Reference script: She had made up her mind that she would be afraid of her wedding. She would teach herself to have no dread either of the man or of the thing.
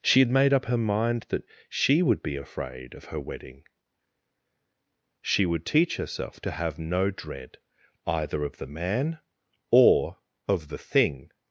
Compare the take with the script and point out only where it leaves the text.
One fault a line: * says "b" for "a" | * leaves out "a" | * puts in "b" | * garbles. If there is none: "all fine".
all fine